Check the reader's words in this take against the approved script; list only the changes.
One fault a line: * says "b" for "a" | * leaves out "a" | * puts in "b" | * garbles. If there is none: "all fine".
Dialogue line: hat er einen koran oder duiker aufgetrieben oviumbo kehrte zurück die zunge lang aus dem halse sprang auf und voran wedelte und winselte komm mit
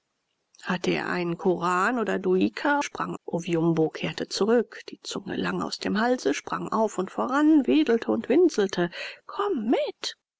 * says "sprang" for "aufgetrieben"